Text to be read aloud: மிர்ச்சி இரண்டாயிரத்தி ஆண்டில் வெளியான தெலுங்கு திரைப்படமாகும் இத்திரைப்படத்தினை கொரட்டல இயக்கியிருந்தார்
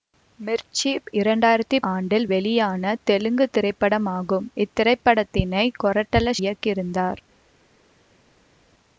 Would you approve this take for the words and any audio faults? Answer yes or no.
yes